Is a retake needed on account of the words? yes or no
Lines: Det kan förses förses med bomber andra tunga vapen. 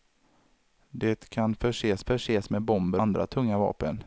no